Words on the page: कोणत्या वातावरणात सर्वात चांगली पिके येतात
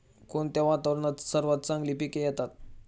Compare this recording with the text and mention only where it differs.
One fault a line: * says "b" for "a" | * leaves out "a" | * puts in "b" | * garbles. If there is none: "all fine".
all fine